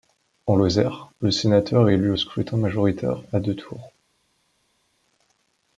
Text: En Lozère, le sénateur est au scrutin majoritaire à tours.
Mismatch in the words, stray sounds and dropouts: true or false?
true